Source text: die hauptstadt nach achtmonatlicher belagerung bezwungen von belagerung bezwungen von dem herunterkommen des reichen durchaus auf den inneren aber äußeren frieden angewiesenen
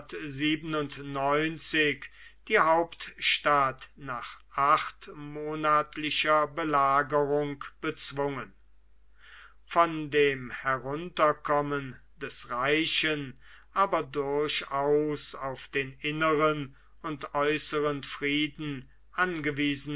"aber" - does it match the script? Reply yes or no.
no